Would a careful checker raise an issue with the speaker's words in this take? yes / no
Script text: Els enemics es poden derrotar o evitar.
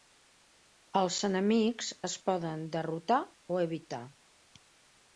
no